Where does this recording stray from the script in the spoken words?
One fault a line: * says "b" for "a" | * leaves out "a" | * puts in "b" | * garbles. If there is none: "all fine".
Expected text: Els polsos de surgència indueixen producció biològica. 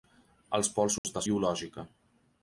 * leaves out "surgència indueixen producció"